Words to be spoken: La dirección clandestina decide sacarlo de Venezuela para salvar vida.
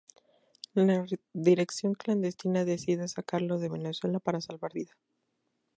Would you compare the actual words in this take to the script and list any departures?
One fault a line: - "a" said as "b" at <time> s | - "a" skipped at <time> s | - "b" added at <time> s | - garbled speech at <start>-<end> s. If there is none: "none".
none